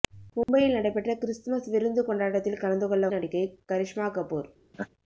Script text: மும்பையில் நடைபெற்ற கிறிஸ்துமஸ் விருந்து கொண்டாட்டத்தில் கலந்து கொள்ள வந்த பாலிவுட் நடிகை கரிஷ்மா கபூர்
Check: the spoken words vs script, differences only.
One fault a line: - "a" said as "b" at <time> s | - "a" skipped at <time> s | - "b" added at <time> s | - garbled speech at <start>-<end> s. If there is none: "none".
- "வந்த பாலிவுட்" skipped at 3.1 s